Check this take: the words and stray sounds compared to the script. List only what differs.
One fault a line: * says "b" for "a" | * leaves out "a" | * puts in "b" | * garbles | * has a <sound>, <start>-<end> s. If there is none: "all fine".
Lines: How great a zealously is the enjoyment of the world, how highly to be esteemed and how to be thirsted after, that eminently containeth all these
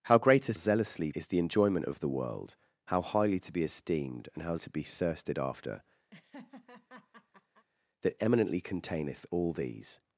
* has a laugh, 6.1-7.7 s